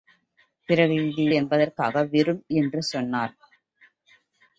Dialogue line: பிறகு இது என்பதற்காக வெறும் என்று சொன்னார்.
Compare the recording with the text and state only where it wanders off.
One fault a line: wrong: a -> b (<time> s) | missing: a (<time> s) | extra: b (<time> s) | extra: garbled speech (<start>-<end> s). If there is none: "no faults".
no faults